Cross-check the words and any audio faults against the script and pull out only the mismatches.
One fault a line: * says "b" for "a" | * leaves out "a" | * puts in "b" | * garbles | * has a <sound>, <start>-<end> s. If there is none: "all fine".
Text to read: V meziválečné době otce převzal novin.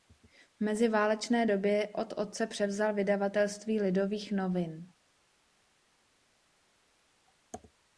* puts in "od"
* puts in "vydavatelství Lidových"